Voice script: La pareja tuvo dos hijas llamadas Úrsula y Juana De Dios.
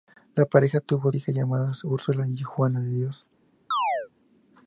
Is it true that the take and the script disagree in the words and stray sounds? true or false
true